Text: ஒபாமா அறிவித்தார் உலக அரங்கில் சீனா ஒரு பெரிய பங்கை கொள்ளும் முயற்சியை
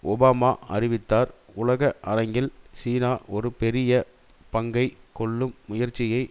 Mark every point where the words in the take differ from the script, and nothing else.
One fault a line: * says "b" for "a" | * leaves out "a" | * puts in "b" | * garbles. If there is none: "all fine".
all fine